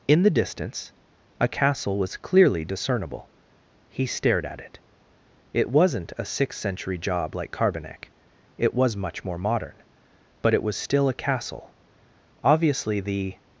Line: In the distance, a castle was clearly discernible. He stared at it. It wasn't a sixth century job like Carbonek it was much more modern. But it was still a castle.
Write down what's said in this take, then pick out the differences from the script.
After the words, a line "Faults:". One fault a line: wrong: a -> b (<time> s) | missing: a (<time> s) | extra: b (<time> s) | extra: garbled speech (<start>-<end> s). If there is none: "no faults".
In the distance, a castle was clearly discernible. He stared at it. It wasn't a sixth century job like Carbonek it was much more modern. But it was still a castle. Obviously, the
Faults:
extra: Obviously the (12.4 s)